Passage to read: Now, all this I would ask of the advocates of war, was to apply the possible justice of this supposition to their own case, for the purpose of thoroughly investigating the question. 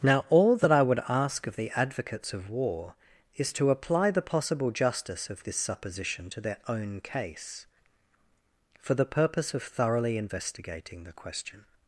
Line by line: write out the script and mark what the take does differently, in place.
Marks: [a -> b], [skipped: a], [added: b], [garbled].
Now, all [this -> that] I would ask of the advocates of war, [was -> is] to apply the possible justice of this supposition to their own case, for the purpose of thoroughly investigating the question.